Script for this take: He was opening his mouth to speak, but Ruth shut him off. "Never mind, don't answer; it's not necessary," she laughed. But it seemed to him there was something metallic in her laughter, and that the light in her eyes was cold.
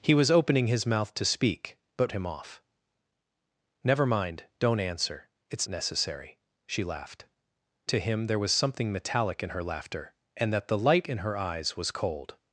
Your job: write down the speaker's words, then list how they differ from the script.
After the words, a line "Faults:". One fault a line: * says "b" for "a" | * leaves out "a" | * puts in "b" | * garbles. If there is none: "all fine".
He was opening his mouth to speak, but Him off. "Never mind, don't answer; it's necessary," she laughed. To him there was something metallic in her laughter, and that the light in her eyes was cold.
Faults:
* leaves out "Ruth shut"
* leaves out "not"
* leaves out "But it seemed"